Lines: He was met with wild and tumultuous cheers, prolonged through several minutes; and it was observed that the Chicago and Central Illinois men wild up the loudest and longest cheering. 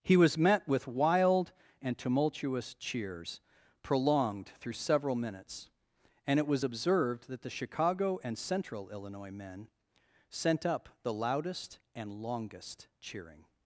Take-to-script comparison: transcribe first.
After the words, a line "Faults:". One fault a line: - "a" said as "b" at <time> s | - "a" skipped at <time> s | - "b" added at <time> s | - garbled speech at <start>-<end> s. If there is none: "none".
He was met with wild and tumultuous cheers, prolonged through several minutes; and it was observed that the Chicago and Central Illinois men sent up the loudest and longest cheering.
Faults:
- "wild" said as "sent" at 10.3 s